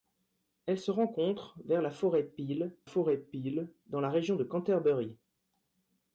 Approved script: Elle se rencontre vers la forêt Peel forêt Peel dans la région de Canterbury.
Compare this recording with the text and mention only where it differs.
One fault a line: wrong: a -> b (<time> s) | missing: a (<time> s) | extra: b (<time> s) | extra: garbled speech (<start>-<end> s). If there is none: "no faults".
no faults